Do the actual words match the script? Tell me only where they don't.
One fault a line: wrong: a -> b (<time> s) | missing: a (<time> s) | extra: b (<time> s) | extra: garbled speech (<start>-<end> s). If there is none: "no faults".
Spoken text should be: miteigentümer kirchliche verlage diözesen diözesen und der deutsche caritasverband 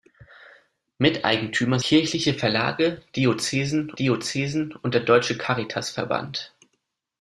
no faults